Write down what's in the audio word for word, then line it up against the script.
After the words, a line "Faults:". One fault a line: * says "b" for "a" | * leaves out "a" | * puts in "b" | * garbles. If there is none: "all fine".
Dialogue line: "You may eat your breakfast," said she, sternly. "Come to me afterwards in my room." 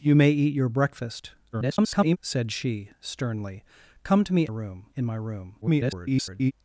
"You may eat your breakfast," [garbled] said she, sternly. "Come to me room in my room." [garbled]
Faults:
* garbles
* says "room" for "afterwards"
* garbles